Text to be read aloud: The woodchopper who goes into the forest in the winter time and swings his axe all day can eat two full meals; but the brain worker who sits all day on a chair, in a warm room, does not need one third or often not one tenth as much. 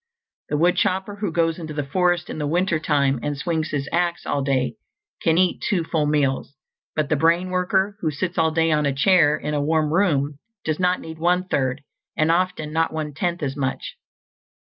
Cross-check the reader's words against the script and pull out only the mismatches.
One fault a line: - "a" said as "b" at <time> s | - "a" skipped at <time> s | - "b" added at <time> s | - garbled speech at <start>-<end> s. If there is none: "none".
- "or" said as "and" at 12.2 s